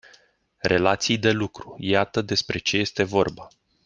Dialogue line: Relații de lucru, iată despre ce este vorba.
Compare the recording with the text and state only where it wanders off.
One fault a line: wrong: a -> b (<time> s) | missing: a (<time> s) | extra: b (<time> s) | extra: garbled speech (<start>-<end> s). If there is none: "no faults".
no faults